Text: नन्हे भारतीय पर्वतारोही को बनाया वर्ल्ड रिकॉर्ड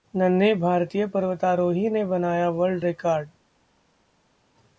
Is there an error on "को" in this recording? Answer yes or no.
yes